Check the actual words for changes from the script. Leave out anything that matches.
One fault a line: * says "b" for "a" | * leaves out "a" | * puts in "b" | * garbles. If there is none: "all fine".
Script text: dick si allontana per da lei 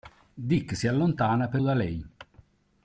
all fine